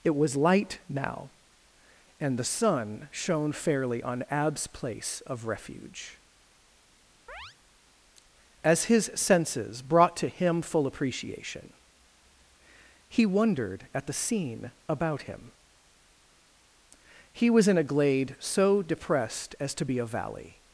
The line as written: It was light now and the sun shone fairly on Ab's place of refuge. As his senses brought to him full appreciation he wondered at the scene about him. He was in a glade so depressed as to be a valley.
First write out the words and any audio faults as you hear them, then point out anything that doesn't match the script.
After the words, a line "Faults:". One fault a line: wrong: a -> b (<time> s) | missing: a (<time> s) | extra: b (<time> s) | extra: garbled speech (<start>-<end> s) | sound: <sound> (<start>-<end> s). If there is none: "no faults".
It was light now and the sun shone fairly on Ab's place of refuge. As his senses brought to him full appreciation he wondered at the scene about him. He was in a glade so depressed as to be a valley.
Faults:
sound: chirp (7.3-7.6 s)